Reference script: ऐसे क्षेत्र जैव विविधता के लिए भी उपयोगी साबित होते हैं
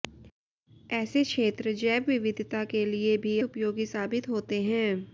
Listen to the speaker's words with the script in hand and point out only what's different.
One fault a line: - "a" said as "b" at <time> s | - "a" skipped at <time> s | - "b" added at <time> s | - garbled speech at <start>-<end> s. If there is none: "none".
none